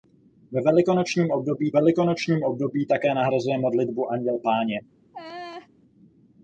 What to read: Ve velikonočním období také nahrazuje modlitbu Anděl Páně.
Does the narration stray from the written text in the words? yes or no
yes